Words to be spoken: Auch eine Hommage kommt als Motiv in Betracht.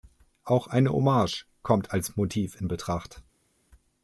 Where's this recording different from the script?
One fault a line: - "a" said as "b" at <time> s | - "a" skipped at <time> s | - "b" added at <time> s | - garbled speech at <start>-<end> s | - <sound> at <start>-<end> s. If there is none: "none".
none